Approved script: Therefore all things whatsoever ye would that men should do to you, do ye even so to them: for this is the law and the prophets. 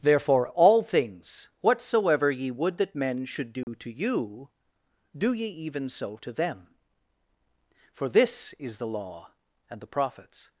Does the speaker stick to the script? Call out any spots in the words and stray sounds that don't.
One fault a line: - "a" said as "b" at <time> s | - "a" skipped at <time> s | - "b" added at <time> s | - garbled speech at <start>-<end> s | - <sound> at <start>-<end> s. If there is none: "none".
- dropout at 3.6-3.7 s